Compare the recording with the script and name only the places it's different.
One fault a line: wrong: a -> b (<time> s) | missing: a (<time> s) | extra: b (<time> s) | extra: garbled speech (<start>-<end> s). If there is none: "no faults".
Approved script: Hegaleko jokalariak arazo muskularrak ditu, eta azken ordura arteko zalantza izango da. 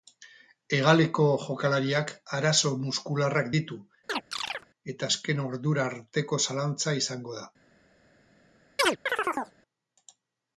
no faults